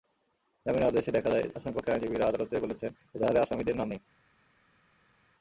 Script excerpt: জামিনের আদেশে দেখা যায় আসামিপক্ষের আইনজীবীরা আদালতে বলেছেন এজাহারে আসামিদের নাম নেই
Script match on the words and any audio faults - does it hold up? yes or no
yes